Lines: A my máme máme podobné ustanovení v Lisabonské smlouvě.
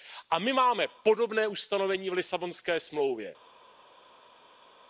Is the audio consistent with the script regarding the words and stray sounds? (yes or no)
no